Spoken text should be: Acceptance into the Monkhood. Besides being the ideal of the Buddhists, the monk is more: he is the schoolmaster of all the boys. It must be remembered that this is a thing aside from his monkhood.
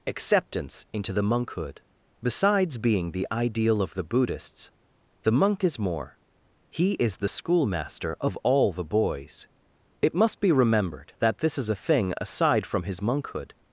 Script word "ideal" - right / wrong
right